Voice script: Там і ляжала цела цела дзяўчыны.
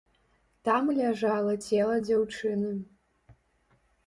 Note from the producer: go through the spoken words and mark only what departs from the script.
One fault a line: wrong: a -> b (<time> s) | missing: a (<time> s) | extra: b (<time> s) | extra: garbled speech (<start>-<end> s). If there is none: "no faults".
missing: цела (2.0 s)